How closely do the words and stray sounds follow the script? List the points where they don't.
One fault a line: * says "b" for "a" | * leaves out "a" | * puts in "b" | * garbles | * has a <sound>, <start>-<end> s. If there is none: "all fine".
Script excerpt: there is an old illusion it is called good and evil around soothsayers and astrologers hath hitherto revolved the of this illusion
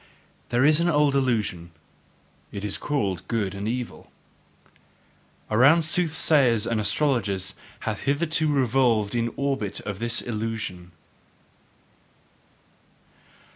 * puts in "orbit"